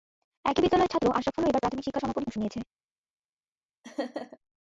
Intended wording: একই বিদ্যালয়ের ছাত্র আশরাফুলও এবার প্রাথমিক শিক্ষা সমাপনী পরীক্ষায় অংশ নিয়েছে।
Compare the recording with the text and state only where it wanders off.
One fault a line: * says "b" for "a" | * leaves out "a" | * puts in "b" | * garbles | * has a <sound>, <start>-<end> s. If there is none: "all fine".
* leaves out "পরীক্ষায়"
* has a laugh, 3.8-4.4 s